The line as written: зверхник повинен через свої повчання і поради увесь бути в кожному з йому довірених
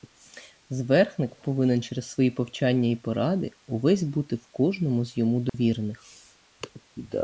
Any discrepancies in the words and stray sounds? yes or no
yes